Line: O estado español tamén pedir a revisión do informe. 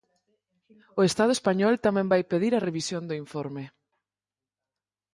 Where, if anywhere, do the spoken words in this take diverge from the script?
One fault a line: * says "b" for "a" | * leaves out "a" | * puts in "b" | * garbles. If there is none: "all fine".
* puts in "vai"